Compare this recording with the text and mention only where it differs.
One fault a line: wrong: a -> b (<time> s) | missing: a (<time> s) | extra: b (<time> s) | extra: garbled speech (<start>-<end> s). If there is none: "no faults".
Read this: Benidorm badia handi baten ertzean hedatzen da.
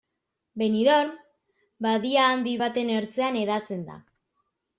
no faults